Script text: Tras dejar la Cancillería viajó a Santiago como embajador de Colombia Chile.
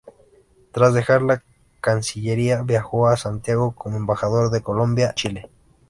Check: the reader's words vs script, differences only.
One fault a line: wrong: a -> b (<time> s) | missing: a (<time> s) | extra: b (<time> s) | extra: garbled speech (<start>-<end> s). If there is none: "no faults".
no faults